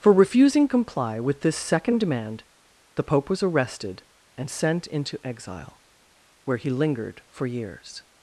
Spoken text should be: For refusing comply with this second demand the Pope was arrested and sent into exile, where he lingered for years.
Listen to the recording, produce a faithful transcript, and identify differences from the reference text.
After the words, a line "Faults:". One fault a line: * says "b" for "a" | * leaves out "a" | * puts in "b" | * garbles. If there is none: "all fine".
For refusing comply with this second demand the Pope was arrested and sent into exile, where he lingered for years.
Faults:
all fine